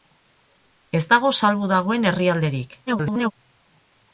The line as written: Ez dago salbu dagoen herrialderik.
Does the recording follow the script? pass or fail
fail